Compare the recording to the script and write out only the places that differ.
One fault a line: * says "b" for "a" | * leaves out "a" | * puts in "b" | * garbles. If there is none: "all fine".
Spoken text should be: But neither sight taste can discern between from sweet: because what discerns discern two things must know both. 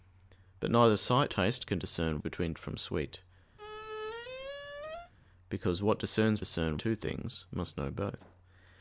all fine